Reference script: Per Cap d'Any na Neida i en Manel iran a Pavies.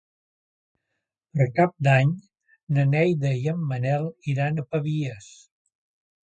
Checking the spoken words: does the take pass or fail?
pass